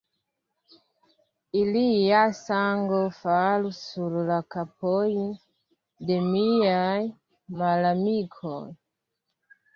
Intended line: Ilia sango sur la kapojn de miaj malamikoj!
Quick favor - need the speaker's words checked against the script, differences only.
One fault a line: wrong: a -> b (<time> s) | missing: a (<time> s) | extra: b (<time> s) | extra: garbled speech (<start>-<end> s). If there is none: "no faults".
extra: falu (3.1 s)